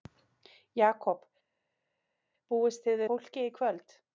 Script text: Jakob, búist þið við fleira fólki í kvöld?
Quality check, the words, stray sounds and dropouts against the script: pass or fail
fail